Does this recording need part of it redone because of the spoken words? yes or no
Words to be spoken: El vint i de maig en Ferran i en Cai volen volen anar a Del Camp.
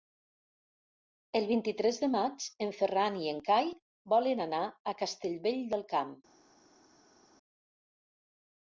yes